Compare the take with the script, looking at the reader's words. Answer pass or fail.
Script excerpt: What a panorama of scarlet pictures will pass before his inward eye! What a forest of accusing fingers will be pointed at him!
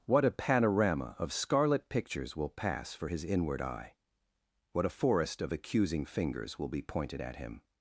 fail